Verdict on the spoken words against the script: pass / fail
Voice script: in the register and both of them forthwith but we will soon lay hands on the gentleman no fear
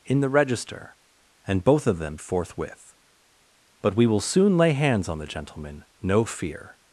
pass